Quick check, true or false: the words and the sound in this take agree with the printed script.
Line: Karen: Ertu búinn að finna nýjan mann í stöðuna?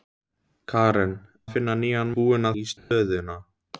false